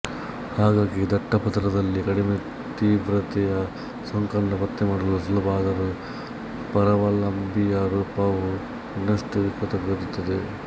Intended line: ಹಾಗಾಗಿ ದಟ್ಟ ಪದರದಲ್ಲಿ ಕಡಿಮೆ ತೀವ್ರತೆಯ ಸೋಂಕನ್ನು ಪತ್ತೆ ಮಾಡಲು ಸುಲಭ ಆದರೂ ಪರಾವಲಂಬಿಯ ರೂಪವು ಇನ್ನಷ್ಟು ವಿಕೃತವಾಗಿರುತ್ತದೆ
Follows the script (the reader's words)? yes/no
yes